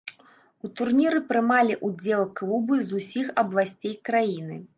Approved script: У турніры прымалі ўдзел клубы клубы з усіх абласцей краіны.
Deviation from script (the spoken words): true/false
true